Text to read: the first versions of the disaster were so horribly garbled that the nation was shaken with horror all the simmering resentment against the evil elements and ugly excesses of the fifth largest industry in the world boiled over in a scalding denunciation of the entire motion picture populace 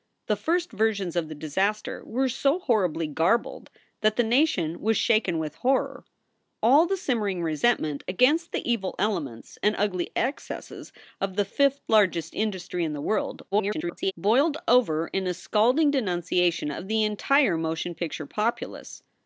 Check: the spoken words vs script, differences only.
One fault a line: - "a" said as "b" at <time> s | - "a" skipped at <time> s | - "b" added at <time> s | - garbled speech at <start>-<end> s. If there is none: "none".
- garbled speech at 13.5-14.1 s